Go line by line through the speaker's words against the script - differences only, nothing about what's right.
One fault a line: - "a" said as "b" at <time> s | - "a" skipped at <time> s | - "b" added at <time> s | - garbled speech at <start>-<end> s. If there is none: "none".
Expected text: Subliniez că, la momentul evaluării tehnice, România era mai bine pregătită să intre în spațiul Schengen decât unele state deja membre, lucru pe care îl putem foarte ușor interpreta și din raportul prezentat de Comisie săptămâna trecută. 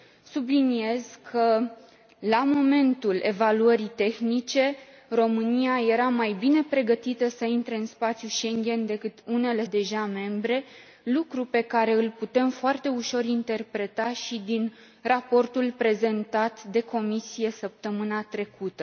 - "state" skipped at 9.7 s